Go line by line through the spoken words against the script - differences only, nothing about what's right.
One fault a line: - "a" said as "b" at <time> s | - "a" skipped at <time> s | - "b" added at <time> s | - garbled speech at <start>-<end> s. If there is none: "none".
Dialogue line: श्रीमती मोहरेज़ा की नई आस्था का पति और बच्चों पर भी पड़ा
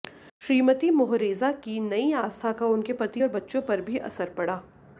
- "उनके" added at 2.7 s
- "असर" added at 4.0 s